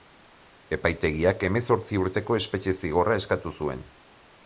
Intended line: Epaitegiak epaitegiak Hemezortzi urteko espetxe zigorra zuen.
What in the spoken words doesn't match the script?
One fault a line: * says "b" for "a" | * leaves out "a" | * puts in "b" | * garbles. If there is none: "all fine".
* leaves out "epaitegiak"
* puts in "eskatu"